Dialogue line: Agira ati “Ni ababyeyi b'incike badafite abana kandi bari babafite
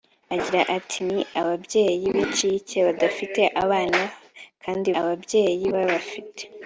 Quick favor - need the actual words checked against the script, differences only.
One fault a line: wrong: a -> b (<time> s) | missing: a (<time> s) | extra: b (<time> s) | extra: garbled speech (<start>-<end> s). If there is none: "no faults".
wrong: bari -> ababyeyi (5.0 s)